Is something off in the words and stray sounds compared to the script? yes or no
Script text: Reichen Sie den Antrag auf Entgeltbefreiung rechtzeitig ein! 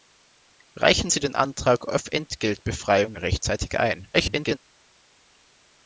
yes